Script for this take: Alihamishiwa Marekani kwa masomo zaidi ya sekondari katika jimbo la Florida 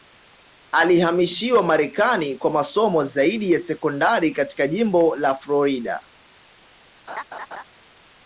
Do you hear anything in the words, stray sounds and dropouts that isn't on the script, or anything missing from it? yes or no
yes